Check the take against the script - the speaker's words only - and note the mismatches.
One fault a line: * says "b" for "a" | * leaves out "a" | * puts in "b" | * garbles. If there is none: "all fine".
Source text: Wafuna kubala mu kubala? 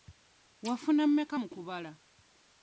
* says "mmeka" for "kubala"